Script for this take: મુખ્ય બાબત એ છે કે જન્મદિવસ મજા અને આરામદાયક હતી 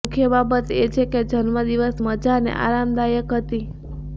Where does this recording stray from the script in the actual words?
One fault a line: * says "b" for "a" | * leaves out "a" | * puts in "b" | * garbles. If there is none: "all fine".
all fine